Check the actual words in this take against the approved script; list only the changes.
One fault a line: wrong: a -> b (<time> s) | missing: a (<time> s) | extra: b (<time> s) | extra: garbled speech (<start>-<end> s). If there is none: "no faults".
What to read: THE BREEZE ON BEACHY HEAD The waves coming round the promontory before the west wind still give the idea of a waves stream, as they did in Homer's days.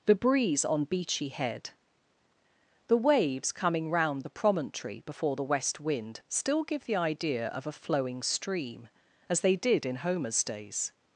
wrong: waves -> flowing (7.7 s)